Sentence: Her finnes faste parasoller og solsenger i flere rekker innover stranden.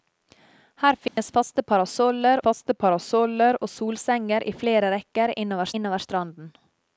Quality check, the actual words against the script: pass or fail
fail